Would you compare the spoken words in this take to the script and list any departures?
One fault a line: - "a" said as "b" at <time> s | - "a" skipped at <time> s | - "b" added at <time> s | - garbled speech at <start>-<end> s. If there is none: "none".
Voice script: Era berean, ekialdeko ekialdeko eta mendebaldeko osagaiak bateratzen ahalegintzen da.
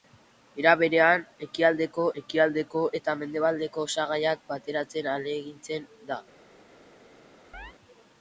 none